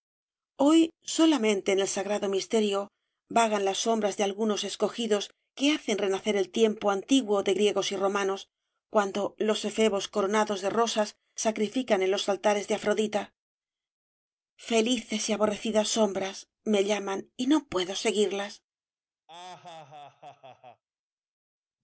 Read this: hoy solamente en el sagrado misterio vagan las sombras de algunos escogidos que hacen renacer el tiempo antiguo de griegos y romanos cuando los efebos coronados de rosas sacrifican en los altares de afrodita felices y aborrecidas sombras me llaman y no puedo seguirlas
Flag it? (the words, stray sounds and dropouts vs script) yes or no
yes